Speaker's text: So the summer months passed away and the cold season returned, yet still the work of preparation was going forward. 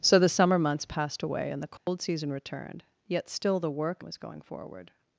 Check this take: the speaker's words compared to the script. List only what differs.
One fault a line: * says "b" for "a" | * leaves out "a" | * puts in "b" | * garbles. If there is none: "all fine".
* leaves out "of preparation"